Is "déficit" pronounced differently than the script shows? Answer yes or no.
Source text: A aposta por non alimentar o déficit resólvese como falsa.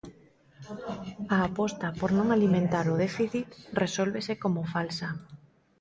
no